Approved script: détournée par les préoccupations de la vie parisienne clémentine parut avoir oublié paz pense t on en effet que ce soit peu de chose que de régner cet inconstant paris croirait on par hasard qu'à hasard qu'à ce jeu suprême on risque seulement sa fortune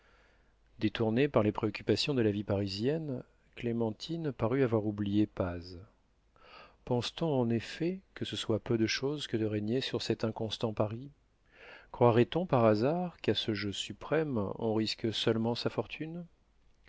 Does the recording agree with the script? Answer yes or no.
no